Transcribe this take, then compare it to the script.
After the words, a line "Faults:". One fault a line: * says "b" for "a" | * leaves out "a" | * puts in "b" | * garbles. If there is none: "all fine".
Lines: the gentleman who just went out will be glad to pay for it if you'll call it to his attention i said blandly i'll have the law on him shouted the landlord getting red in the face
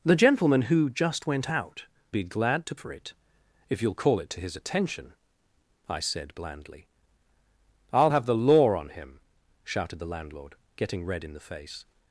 the gentleman who just went out be glad to for it if you'll call it to his attention i said blandly i'll have the law on him shouted the landlord getting red in the face
Faults:
* leaves out "will"
* leaves out "pay"